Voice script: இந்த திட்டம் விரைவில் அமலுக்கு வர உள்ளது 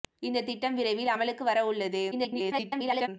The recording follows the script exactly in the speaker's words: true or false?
false